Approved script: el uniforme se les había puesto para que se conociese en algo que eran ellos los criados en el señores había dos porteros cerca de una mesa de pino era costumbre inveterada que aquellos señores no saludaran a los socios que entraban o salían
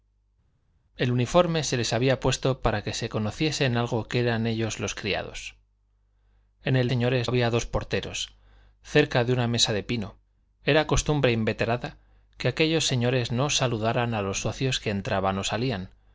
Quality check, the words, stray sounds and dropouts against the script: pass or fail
pass